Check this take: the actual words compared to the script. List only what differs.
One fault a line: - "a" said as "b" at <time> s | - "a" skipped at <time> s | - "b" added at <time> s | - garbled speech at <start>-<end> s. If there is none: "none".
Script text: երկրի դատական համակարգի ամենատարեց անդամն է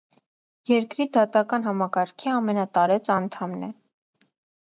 none